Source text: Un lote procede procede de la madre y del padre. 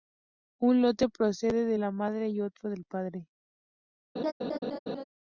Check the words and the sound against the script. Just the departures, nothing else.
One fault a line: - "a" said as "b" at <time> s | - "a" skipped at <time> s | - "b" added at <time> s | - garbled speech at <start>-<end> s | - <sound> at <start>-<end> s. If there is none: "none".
- "procede" skipped at 1.6 s
- "otro" added at 2.4 s
- laugh at 4.2-5.0 s